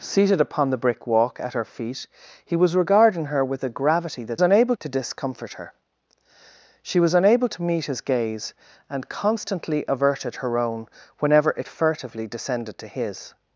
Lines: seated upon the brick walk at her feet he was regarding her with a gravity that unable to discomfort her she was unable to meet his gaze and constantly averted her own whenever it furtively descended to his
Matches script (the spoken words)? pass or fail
pass